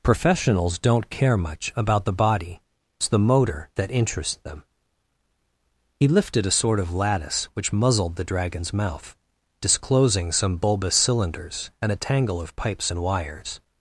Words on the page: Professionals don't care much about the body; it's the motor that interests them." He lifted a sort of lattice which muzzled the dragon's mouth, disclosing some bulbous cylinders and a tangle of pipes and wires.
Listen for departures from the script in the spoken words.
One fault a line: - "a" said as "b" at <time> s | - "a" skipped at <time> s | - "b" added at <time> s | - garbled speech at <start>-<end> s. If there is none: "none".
none